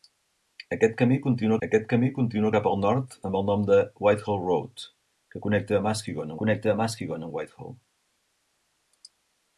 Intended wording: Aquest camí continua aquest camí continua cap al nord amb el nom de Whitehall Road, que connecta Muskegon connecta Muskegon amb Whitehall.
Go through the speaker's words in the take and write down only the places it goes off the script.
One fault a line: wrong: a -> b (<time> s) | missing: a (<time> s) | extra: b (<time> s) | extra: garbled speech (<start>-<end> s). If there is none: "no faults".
no faults